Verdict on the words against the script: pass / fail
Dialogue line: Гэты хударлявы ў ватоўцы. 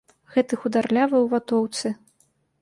pass